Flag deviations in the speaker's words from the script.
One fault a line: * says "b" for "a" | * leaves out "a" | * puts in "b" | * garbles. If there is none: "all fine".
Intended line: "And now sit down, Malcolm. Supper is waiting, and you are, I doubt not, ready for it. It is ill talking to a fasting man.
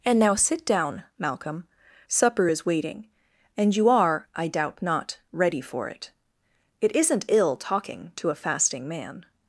* says "isn't" for "is"